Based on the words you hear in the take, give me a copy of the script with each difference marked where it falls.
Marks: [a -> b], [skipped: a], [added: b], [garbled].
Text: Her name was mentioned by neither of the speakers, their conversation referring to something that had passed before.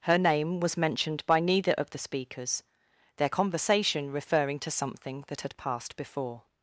Her name was mentioned by neither of the speakers, their conversation referring to something that had passed before.